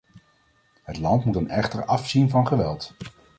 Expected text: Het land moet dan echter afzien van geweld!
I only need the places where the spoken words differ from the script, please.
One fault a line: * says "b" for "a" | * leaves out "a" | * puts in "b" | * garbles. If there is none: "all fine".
all fine